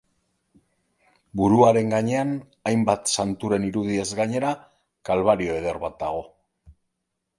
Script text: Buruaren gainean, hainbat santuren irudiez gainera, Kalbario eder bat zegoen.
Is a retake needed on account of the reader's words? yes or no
yes